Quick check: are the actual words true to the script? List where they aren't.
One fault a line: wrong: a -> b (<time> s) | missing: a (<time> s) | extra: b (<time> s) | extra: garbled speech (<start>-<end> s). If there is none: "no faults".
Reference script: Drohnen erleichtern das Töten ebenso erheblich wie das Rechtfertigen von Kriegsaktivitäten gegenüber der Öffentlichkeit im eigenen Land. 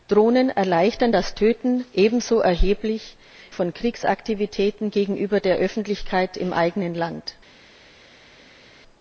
missing: wie das Rechtfertigen (3.2 s)